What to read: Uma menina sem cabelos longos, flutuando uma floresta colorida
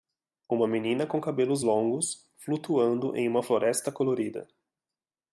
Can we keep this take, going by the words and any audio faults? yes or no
no